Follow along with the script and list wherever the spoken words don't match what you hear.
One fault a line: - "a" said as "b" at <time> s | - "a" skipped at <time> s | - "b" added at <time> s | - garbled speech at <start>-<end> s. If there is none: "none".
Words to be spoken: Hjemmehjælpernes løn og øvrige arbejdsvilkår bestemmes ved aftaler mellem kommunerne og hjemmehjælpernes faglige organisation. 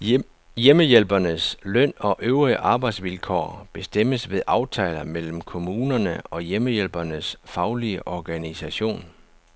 none